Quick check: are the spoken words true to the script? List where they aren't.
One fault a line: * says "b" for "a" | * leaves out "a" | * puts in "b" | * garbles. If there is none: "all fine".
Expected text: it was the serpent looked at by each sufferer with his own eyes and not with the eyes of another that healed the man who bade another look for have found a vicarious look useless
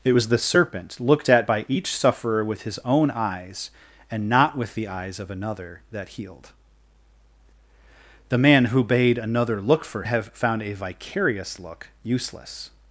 all fine